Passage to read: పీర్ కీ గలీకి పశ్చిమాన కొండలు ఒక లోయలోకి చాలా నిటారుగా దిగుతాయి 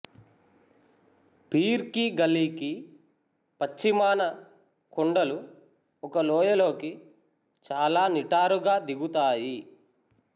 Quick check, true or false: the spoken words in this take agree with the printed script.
true